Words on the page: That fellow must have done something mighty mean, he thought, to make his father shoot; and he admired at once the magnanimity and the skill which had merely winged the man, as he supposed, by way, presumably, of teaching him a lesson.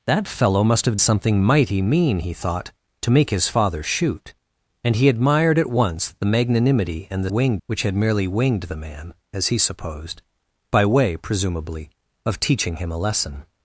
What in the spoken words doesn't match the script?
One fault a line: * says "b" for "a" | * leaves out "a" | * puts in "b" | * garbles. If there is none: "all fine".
* leaves out "done"
* says "winged" for "skill"